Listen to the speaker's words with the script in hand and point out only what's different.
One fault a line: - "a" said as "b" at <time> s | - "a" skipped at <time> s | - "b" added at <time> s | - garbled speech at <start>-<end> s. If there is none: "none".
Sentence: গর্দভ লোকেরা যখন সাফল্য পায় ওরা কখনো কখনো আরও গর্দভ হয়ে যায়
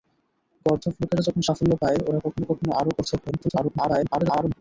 - garbled speech at 3.3-4.6 s